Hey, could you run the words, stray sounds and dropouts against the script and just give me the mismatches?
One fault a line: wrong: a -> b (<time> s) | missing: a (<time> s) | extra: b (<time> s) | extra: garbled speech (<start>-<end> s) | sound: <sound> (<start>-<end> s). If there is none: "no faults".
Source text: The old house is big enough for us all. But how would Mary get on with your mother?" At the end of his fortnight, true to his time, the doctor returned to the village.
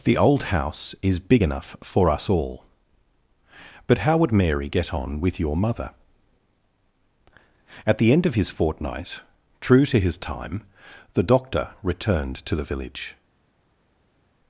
no faults